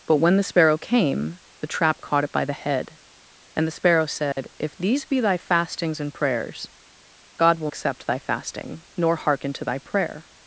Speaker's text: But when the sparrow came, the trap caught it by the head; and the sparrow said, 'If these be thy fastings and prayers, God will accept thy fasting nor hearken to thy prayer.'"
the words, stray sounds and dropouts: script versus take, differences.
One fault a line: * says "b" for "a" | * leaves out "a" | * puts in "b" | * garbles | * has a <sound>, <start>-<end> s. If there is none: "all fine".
* has a dropout, 4.3-4.4 s